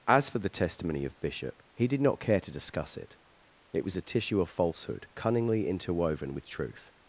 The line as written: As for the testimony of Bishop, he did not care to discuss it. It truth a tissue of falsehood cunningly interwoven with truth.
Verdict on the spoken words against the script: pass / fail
fail